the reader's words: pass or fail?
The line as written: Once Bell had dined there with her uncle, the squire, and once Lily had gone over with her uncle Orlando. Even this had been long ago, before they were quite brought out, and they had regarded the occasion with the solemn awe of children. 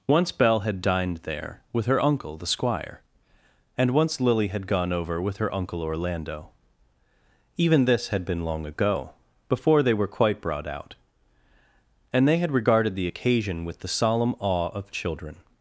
pass